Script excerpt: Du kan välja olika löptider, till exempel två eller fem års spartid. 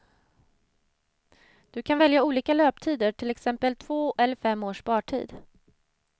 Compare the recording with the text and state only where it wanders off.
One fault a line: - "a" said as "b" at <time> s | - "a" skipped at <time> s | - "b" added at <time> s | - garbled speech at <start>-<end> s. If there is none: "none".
none